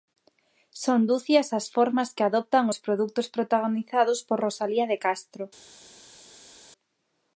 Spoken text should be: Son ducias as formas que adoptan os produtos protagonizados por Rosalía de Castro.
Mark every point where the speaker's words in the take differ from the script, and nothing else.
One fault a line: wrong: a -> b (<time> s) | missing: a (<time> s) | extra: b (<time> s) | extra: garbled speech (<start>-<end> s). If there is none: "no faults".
no faults